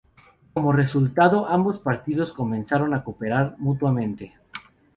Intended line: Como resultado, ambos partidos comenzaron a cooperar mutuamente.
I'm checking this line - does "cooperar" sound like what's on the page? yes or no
yes